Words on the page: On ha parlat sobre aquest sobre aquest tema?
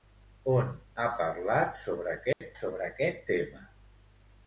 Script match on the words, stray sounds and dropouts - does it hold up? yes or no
no